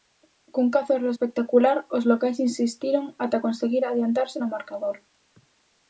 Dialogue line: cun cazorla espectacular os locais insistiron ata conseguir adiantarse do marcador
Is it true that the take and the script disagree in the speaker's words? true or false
true